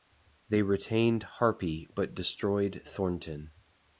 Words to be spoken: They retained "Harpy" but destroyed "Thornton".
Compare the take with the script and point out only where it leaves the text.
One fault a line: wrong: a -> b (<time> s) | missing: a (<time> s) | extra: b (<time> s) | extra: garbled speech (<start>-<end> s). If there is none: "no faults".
no faults